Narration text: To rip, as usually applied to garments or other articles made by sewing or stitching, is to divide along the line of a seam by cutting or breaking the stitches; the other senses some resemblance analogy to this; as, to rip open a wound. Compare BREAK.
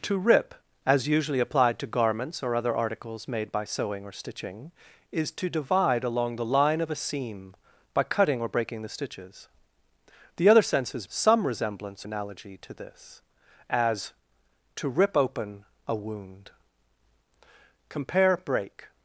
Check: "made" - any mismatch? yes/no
no